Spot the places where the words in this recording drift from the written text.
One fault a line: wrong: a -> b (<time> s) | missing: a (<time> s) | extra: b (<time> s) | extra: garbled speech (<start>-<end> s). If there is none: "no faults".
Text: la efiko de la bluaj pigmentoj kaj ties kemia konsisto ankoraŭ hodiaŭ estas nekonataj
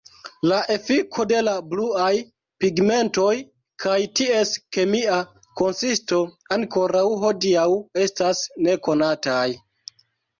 no faults